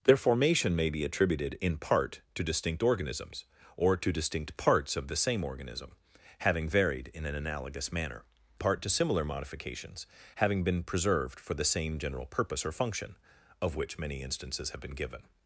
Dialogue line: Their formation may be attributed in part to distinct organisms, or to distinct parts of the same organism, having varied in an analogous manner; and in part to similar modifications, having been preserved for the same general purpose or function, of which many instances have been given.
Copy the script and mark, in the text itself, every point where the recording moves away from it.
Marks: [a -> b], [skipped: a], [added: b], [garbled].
Their formation may be attributed in part to distinct organisms, or to distinct parts of the same organism, having varied in an analogous manner; [skipped: and in] part to similar modifications, having been preserved for the same general purpose or function, of which many instances have been given.